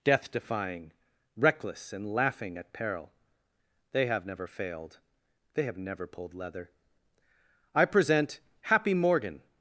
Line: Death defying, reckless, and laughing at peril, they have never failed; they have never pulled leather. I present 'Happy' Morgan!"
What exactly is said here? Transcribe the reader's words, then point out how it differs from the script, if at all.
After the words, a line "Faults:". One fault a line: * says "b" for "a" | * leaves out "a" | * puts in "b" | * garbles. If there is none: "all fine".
Death defying, reckless, and laughing at peril, they have never failed; they have never pulled leather. I present 'Happy' Morgan!"
Faults:
all fine